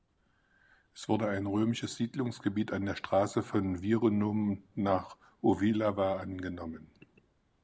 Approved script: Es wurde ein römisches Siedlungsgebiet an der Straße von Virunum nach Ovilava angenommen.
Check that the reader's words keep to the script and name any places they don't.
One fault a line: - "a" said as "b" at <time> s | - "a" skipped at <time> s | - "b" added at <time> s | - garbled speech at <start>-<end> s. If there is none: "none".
none